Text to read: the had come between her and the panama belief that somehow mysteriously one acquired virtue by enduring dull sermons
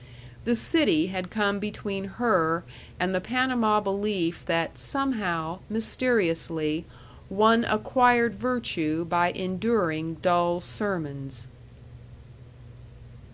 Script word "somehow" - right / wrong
right